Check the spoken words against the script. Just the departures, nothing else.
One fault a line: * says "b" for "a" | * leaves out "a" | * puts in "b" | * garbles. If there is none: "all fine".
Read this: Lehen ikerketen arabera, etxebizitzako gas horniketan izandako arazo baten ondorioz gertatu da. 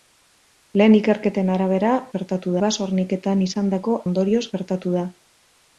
* says "gertatu" for "etxebizitzako"
* leaves out "arazo baten"